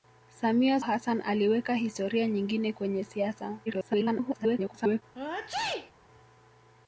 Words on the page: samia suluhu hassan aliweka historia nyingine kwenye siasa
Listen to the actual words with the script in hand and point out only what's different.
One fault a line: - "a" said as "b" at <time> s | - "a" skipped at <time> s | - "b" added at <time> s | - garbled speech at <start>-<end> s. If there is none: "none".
- "suluhu" skipped at 0.8 s
- garbled speech at 3.7-5.0 s